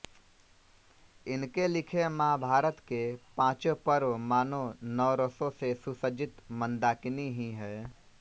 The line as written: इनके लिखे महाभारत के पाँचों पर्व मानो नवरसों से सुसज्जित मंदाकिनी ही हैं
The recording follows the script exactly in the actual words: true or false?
true